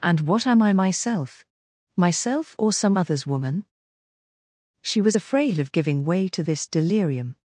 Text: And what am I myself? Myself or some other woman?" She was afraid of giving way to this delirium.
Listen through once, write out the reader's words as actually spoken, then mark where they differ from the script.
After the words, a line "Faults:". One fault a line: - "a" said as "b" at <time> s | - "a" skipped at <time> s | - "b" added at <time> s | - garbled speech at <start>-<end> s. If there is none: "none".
And what am I myself? Myself or some others woman?" She was afraid of giving way to this delirium.
Faults:
- "other" said as "others" at 3.0 s